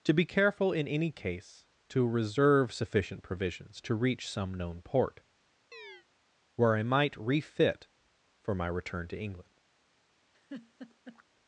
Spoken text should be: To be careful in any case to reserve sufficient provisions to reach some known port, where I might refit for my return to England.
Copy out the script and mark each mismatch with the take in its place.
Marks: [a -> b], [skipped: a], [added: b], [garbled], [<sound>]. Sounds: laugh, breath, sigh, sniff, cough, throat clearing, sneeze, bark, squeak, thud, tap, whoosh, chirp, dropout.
To be careful in any case to reserve sufficient provisions to reach some known port, [chirp] where I might refit for my return to England. [laugh]